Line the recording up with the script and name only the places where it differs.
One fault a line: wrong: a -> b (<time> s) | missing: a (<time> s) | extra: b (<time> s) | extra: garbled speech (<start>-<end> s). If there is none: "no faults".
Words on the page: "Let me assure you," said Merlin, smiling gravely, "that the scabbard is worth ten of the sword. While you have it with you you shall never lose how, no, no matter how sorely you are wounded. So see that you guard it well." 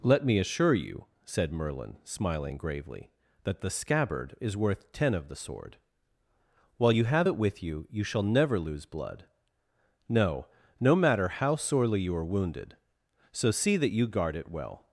wrong: how -> blood (8.9 s)